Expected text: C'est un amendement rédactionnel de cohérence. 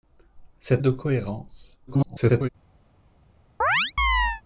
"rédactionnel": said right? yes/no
no